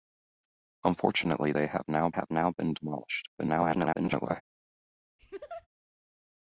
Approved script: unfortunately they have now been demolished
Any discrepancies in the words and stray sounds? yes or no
yes